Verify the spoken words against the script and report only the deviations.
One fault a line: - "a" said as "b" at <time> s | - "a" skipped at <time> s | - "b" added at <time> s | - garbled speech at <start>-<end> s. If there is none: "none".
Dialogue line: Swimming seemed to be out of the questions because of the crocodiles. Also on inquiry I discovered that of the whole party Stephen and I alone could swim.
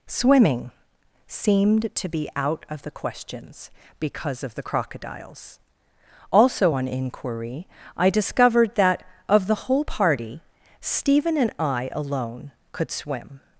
none